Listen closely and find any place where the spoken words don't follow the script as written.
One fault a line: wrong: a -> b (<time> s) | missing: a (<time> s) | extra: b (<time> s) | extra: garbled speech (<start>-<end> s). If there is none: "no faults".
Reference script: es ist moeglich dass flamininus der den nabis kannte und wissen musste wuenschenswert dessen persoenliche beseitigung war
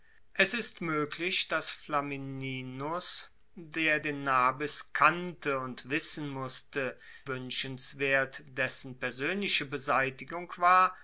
no faults